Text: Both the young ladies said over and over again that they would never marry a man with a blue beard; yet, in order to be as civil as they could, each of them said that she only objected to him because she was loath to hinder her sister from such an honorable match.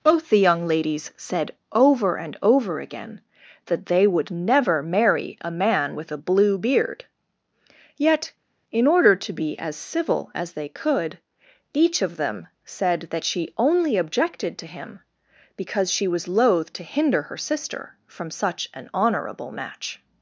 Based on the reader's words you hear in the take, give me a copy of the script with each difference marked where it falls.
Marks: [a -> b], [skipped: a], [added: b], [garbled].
Both the young ladies said over and over again that they would never marry a man with a blue beard; yet, in order to be as civil as they could, each of them said that she only objected to him because she was loath to hinder her sister from such an honorable match.